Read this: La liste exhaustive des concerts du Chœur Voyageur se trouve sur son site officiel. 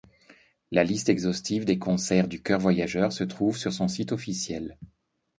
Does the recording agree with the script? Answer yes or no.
yes